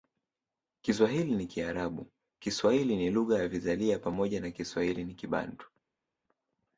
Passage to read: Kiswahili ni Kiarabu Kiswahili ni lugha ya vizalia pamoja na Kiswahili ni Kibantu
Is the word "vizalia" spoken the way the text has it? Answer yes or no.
yes